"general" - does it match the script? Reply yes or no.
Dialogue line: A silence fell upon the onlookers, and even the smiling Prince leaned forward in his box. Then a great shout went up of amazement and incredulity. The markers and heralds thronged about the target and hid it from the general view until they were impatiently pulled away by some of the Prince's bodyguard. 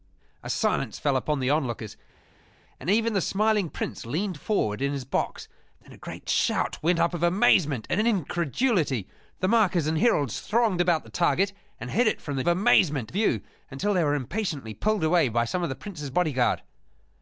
no